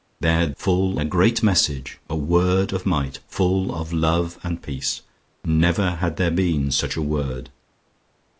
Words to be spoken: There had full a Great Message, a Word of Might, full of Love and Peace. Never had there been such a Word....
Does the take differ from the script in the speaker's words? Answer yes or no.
no